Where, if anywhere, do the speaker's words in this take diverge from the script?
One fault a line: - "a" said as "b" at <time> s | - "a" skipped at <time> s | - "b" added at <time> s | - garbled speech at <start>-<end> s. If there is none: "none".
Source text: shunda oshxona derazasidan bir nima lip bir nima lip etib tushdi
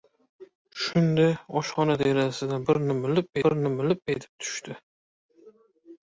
none